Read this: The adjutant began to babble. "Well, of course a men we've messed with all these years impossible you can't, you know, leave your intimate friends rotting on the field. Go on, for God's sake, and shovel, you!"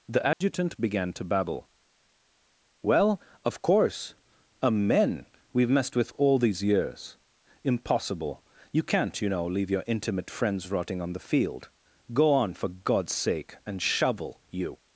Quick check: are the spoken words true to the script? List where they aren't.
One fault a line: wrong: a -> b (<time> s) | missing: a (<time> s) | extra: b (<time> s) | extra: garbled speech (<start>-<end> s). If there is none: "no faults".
no faults